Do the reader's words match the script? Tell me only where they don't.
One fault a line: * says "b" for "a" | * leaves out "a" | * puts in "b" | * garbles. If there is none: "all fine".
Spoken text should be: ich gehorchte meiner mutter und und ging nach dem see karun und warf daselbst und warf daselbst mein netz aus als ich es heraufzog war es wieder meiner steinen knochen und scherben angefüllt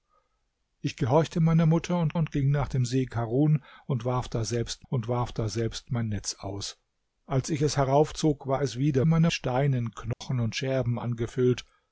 all fine